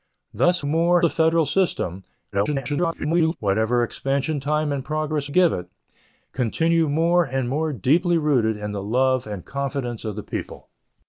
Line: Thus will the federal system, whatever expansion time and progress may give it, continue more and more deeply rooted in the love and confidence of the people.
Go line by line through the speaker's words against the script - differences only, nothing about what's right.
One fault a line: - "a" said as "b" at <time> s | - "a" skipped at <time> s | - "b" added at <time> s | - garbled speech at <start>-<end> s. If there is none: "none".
- "will" said as "more" at 0.6 s
- garbled speech at 2.3-3.4 s
- "may" skipped at 5.3 s